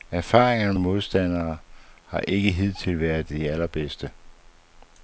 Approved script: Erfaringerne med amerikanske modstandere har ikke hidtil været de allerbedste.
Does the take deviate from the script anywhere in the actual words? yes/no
yes